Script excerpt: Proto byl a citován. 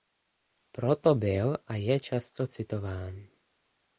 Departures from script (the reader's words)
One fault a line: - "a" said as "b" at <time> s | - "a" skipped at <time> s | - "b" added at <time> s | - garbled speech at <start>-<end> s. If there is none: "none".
- "je často" added at 1.8 s